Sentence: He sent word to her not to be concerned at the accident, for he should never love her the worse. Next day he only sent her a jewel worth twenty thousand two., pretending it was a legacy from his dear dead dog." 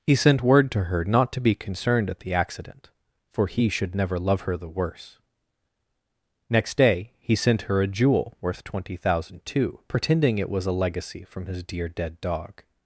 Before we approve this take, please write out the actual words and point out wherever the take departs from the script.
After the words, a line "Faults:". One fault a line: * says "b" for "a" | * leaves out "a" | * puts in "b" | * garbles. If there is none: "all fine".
He sent word to her not to be concerned at the accident, for he should never love her the worse. Next day he sent her a jewel worth twenty thousand two., pretending it was a legacy from his dear dead dog."
Faults:
* leaves out "only"